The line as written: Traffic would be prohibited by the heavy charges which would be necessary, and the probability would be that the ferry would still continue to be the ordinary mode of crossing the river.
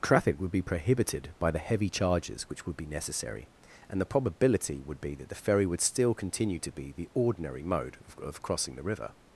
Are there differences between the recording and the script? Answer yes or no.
yes